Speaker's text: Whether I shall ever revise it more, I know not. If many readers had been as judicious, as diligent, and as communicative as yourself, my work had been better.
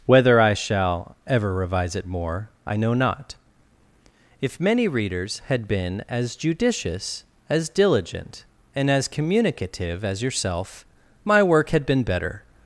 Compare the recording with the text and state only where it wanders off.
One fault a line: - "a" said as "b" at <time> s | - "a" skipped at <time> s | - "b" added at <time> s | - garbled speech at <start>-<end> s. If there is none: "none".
none